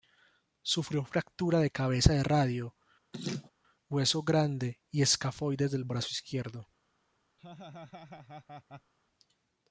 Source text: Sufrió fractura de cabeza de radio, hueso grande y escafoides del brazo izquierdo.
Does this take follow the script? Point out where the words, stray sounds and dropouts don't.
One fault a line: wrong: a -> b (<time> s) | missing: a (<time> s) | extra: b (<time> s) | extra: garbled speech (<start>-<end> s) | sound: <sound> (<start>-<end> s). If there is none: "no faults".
sound: laugh (3.1-3.5 s)
sound: laugh (7.4-8.9 s)